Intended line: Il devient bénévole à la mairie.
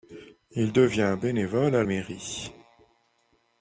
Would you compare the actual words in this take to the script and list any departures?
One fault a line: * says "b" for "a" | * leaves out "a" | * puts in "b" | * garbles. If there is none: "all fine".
* leaves out "la"